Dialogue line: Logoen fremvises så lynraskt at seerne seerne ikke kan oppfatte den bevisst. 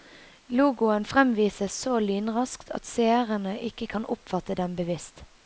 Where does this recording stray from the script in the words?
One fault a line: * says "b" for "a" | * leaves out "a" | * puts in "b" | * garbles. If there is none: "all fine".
* leaves out "seerne"